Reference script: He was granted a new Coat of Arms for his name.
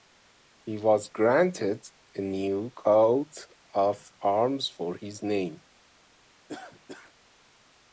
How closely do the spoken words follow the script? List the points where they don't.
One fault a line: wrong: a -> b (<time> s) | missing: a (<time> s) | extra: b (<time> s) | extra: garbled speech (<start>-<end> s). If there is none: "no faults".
no faults